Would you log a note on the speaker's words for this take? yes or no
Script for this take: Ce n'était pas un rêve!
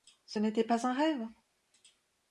no